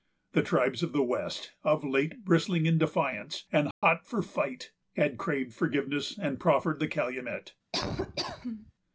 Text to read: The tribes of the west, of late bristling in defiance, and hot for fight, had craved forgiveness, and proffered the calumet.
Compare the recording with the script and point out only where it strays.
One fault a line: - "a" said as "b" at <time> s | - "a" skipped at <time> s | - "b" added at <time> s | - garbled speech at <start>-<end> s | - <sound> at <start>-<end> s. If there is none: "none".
- dropout at 3.7-3.8 s
- laugh at 7.7-8.7 s